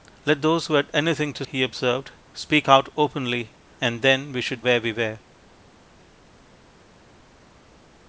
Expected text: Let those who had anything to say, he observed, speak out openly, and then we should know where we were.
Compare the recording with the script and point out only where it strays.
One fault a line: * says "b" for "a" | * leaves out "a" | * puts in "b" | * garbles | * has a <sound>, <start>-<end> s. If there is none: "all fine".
* leaves out "say"
* leaves out "know"